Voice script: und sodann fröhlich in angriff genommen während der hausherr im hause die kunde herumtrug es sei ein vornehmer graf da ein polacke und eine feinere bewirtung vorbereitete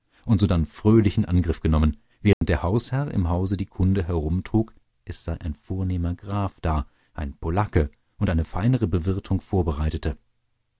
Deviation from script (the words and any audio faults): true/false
true